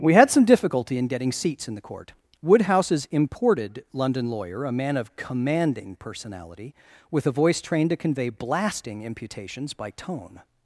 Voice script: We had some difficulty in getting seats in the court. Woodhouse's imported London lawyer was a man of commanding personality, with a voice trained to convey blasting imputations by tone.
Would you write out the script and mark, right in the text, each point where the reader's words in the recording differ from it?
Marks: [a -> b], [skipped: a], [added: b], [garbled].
We had some difficulty in getting seats in the court. Woodhouse's imported London lawyer [skipped: was] a man of commanding personality, with a voice trained to convey blasting imputations by tone.